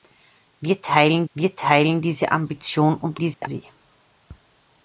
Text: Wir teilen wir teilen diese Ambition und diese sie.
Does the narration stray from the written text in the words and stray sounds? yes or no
yes